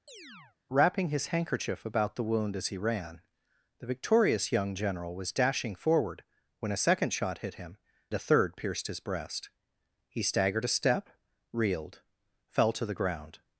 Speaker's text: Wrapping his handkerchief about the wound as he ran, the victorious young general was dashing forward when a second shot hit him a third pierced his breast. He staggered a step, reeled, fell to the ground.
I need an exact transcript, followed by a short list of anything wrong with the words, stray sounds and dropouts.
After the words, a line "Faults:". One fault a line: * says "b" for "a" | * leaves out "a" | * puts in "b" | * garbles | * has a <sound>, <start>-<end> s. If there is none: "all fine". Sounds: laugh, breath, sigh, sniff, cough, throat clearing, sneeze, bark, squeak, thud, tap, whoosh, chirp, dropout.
Wrapping his handkerchief about the wound as he ran, the victorious young general was dashing forward when a second shot hit him a third pierced his breast. He staggered a step, reeled, fell to the ground.
Faults:
* has a chirp, 0.1-0.6 s